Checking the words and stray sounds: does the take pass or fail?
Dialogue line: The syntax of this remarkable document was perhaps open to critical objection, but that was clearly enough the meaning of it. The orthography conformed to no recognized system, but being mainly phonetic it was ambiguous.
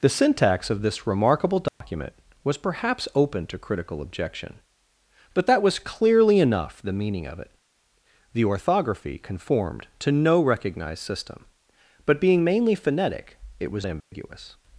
fail